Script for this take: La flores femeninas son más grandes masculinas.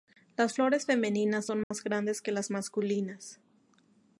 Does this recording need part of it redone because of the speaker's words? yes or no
yes